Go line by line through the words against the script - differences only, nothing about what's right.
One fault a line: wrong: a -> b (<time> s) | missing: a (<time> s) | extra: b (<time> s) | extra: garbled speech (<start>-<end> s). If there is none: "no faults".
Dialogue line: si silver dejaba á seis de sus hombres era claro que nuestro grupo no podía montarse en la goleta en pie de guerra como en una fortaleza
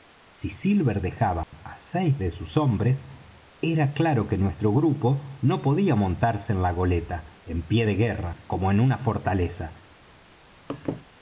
no faults